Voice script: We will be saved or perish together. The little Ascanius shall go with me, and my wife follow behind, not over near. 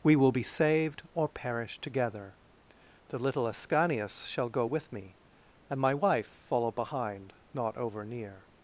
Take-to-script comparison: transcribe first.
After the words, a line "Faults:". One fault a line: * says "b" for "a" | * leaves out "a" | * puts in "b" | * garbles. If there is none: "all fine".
We will be saved or perish together. The little Ascanius shall go with me, and my wife follow behind, not over near.
Faults:
all fine